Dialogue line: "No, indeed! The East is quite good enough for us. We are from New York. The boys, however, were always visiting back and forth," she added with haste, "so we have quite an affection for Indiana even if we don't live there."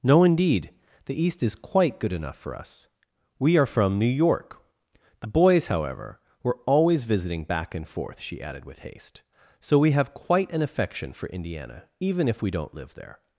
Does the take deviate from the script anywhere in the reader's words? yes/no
no